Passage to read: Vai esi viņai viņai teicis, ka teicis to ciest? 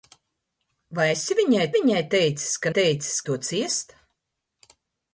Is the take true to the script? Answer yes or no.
yes